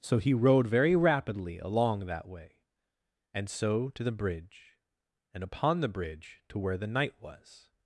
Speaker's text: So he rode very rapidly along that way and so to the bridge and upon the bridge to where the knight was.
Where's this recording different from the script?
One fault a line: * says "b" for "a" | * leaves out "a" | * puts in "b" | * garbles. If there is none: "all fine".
all fine